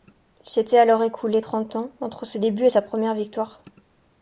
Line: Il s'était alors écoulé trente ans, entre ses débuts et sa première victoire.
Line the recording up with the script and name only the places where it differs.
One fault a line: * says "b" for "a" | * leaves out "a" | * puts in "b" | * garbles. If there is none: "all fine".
all fine